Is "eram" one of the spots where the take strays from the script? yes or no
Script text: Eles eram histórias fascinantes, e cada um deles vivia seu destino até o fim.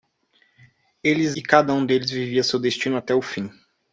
yes